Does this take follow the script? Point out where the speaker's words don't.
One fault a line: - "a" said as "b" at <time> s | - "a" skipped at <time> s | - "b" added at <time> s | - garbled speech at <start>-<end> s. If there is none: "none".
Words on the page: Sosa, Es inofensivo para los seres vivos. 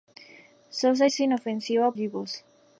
- "para los seres" skipped at 1.9 s